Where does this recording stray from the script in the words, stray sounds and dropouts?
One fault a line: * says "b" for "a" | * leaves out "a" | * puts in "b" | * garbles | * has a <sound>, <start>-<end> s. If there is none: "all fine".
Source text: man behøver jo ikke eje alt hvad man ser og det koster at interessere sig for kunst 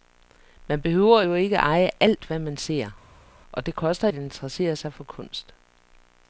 all fine